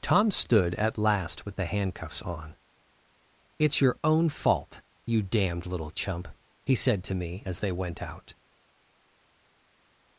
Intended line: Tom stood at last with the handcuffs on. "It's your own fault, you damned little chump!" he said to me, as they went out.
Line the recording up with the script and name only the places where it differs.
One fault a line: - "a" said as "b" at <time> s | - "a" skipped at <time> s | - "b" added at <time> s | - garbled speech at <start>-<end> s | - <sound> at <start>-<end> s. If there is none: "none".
none